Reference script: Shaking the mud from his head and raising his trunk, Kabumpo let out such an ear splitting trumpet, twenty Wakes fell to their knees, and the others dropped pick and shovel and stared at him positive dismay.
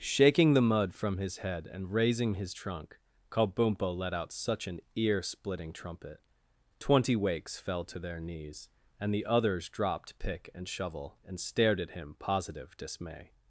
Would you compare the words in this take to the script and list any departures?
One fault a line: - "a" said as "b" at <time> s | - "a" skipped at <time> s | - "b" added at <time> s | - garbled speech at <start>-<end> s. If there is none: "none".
none